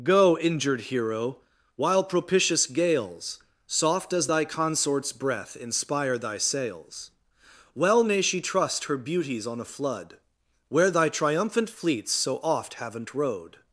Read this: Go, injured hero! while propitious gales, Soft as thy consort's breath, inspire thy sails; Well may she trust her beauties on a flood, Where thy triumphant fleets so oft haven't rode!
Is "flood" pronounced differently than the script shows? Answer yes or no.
no